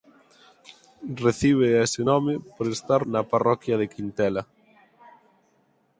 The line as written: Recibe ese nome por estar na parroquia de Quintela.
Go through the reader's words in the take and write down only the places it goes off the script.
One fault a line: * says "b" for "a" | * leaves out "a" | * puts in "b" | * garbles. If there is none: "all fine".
all fine